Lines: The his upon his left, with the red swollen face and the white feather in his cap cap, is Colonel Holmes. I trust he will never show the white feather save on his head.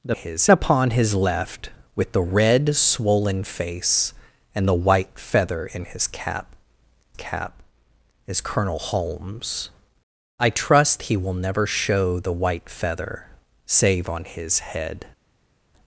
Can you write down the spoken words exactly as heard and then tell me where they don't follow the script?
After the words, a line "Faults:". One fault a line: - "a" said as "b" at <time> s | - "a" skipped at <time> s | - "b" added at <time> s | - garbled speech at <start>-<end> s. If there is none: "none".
The his upon his left, with the red swollen face and the white feather in his cap cap, is Colonel Holmes. I trust he will never show the white feather save on his head.
Faults:
none